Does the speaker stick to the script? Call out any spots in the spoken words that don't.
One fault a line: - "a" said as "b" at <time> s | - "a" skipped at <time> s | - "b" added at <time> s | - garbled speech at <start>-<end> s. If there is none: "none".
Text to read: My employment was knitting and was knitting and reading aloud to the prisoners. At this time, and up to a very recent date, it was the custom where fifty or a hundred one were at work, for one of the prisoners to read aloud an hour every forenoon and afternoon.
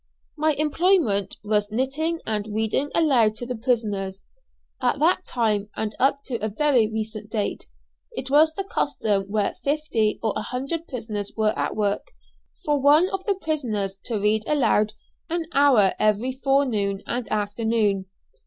- "was knitting and" skipped at 2.5 s
- "this" said as "that" at 5.0 s
- "one" said as "prisoners" at 10.9 s